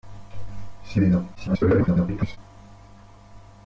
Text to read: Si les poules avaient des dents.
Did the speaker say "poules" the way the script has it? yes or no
no